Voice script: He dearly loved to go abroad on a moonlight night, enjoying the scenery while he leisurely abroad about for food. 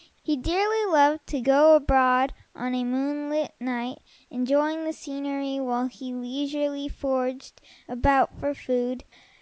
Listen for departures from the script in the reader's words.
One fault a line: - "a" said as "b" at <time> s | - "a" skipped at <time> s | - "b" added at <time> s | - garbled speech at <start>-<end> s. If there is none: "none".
- "abroad" said as "foraged" at 6.9 s